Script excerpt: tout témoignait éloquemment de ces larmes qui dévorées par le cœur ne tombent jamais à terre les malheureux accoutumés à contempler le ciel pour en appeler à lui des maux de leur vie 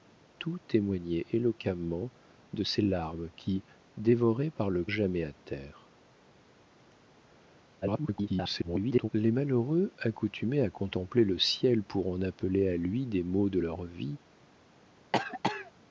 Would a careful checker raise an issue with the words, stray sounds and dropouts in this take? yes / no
yes